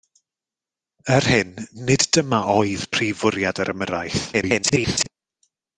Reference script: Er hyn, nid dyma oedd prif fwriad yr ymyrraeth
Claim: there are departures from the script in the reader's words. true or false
true